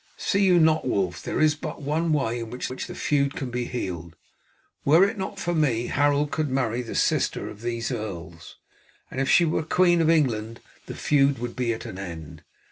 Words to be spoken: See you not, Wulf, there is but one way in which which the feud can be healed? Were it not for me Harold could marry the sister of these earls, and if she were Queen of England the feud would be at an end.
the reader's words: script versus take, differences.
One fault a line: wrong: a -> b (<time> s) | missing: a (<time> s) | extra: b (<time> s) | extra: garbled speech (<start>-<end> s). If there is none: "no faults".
no faults